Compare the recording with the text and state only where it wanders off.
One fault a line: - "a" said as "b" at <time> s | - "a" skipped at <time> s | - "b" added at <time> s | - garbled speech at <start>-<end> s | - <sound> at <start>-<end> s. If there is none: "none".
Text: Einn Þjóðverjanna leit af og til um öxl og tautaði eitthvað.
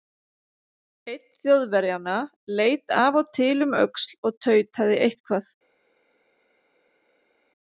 none